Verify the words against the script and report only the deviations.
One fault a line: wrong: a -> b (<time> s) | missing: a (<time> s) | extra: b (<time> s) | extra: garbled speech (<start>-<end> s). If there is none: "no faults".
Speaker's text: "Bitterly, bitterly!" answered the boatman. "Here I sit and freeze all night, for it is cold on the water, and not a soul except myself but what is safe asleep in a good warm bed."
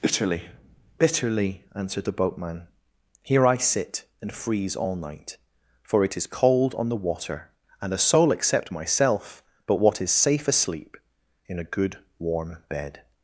missing: not (7.9 s)